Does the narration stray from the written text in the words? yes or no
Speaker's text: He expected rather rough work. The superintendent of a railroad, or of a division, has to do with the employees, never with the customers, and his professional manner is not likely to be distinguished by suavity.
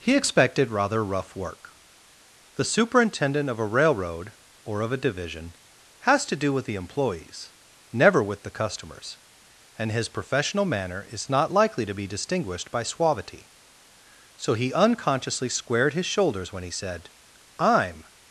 yes